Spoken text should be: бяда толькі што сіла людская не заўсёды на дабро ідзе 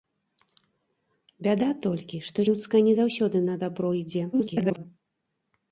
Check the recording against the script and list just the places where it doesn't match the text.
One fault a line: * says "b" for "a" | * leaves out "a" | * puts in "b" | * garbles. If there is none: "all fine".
* leaves out "сіла"
* garbles